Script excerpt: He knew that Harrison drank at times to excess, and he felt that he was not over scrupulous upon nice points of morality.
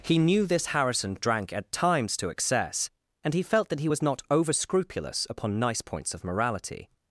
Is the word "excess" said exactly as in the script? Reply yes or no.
yes